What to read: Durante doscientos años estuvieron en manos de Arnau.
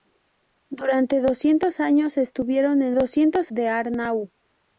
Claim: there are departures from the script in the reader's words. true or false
true